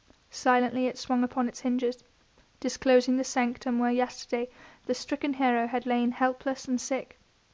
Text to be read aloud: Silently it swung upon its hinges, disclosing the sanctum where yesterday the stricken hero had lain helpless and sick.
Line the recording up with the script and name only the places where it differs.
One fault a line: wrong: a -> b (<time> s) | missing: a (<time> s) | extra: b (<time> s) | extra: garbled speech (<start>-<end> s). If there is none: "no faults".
no faults